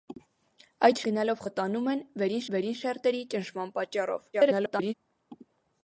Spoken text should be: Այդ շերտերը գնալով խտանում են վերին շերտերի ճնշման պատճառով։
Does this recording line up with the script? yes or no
no